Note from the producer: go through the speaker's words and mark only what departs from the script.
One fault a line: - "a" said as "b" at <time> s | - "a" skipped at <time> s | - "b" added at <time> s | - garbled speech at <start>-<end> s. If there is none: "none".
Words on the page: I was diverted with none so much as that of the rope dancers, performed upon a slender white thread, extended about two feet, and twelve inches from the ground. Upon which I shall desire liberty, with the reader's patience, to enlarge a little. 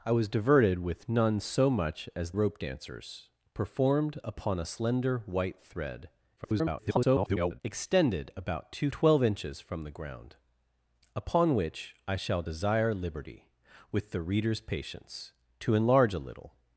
- "that of the" skipped at 2.3 s
- garbled speech at 6.4-7.6 s
- "feet and" skipped at 8.9 s